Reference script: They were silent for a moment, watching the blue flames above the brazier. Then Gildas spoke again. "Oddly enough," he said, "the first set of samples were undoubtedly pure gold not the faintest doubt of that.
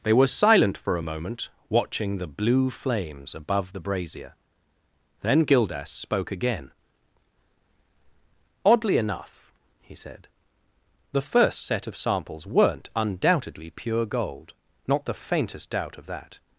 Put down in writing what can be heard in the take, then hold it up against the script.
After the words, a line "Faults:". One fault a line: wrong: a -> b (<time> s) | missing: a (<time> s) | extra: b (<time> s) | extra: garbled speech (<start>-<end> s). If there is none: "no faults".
They were silent for a moment, watching the blue flames above the brazier. Then Gildas spoke again. "Oddly enough," he said, "the first set of samples weren't undoubtedly pure gold not the faintest doubt of that.
Faults:
wrong: were -> weren't (12.5 s)